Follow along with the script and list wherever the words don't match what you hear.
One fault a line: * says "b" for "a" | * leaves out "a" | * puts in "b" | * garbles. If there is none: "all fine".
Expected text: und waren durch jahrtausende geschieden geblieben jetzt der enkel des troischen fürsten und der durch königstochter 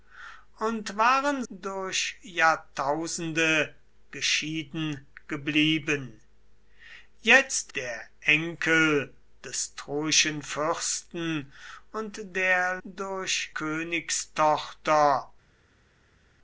all fine